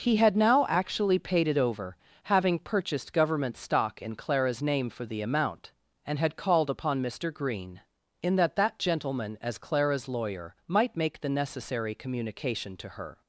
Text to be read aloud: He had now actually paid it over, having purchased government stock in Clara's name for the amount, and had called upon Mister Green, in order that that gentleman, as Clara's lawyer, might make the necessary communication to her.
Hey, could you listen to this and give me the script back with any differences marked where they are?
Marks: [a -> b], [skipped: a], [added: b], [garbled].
He had now actually paid it over, having purchased government stock in Clara's name for the amount, and had called upon Mister Green, in [skipped: order] that that gentleman, as Clara's lawyer, might make the necessary communication to her.